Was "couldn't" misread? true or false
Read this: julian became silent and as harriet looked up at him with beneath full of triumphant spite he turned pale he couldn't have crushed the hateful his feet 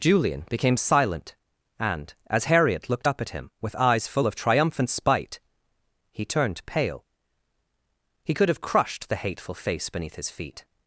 true